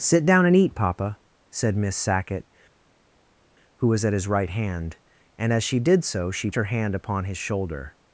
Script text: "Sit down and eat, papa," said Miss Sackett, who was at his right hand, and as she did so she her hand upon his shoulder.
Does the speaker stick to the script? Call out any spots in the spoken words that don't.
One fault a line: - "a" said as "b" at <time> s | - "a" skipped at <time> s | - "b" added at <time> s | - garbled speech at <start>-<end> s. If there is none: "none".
none